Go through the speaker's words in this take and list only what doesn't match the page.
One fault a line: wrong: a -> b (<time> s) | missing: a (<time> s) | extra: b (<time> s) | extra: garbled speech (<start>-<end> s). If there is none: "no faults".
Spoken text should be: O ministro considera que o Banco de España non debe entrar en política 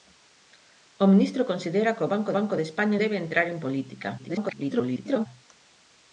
extra: Banco (2.4 s)
missing: non (3.0 s)
extra: garbled speech (4.2-5.3 s)